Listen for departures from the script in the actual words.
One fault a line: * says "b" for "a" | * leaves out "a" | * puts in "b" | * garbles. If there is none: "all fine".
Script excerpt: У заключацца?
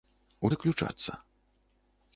all fine